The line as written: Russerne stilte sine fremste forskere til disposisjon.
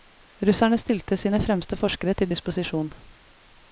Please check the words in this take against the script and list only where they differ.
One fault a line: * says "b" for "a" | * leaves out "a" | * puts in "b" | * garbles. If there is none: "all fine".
all fine